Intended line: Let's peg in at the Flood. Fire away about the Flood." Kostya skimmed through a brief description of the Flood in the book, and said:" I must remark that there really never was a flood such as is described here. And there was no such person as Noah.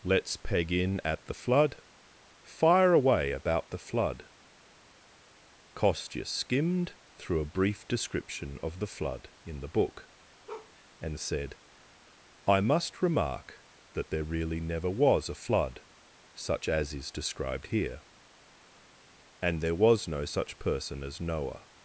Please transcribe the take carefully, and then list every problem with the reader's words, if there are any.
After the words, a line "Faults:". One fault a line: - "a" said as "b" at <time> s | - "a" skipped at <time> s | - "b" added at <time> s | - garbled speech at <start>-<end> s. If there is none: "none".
Let's peg in at the Flood. Fire away about the Flood." Kostya skimmed through a brief description of the Flood in the book, and said:" I must remark that there really never was a flood such as is described here. And there was no such person as Noah.
Faults:
none